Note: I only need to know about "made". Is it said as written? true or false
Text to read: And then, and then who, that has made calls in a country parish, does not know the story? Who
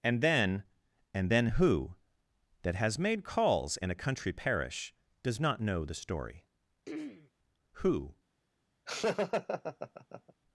true